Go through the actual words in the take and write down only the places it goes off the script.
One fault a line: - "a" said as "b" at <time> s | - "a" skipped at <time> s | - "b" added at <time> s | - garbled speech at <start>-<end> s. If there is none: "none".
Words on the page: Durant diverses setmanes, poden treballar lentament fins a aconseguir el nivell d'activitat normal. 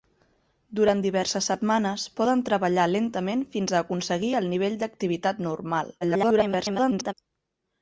- garbled speech at 6.0-7.1 s